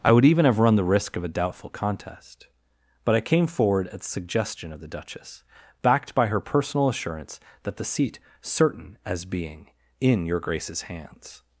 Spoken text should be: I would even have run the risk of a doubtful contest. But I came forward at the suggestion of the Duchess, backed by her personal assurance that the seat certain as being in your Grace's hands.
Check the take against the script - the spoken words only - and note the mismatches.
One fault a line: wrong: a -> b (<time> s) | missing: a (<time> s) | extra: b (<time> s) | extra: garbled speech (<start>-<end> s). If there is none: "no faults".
no faults